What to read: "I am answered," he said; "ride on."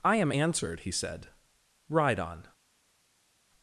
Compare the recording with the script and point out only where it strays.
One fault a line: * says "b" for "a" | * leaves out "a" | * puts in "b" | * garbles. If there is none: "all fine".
all fine